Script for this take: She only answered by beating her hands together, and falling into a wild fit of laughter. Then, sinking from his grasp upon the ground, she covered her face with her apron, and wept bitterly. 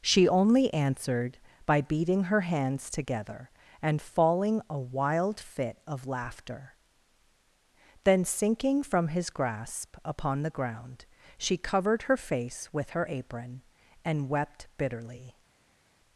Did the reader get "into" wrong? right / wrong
wrong